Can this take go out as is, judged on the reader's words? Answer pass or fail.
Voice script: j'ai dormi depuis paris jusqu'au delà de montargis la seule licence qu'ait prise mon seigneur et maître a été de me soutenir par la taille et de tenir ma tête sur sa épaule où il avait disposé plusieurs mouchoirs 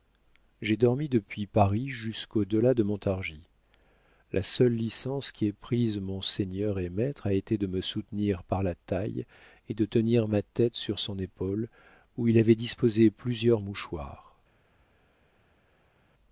fail